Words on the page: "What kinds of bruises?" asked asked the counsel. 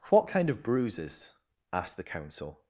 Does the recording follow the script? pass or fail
fail